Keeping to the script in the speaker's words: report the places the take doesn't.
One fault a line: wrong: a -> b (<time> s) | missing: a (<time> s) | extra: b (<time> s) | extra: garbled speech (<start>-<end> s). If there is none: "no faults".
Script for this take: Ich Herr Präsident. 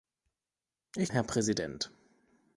no faults